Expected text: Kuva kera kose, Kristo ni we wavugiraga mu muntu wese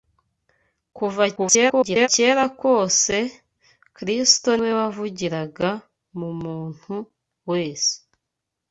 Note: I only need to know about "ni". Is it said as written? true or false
false